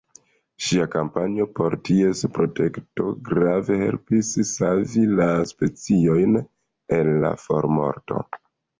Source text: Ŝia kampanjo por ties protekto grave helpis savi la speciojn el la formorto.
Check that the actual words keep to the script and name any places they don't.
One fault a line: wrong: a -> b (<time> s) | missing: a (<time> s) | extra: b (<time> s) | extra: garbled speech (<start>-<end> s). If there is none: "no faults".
no faults